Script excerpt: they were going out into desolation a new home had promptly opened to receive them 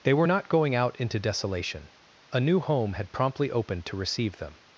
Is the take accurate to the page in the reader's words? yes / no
no